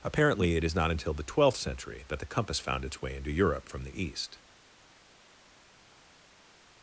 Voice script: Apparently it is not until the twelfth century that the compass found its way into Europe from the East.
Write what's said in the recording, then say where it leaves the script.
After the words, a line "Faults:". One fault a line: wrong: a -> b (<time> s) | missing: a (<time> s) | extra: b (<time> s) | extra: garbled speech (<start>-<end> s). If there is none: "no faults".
Apparently it is not until the twelfth century that the compass found its way into Europe from the East.
Faults:
no faults